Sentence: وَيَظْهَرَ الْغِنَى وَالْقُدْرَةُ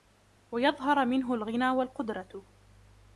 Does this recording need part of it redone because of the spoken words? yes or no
yes